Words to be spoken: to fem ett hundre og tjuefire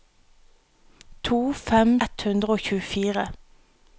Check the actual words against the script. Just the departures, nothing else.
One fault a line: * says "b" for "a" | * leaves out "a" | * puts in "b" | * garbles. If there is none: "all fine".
all fine